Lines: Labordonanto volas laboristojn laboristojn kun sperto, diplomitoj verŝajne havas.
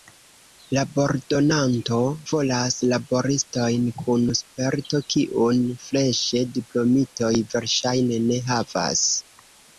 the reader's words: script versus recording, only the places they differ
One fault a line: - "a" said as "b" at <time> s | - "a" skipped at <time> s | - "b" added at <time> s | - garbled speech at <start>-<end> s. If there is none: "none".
- "laboristojn" skipped at 3.9 s
- "kiun freŝe" added at 5.1 s
- "ne" added at 8.3 s